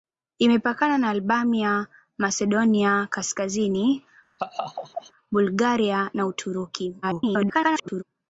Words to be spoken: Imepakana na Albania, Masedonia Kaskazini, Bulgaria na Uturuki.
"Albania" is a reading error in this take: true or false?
false